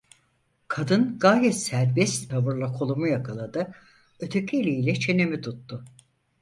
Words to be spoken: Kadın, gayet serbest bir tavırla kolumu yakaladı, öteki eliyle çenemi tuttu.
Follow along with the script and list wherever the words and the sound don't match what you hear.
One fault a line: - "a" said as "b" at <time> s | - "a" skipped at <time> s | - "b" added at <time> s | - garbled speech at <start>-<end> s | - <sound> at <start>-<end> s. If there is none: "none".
- "bir" skipped at 2.3 s